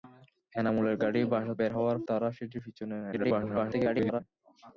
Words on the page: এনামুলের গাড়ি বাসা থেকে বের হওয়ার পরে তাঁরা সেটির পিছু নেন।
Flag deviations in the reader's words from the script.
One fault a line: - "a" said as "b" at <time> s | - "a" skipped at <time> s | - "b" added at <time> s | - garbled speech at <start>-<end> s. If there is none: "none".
- "থেকে" skipped at 1.5 s
- "পরে" skipped at 2.0 s
- garbled speech at 3.1-4.2 s